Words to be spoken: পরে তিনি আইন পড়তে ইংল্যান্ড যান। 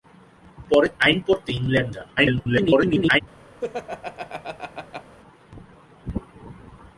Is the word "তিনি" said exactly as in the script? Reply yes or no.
no